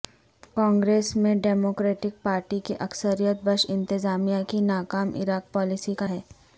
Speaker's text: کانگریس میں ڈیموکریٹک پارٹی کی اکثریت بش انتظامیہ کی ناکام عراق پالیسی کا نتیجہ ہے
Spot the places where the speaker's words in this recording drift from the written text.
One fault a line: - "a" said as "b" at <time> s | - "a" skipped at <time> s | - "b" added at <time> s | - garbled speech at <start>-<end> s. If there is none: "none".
- "نتیجہ" skipped at 6.1 s